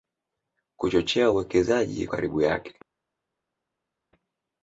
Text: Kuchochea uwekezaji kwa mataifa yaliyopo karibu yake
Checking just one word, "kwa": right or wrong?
wrong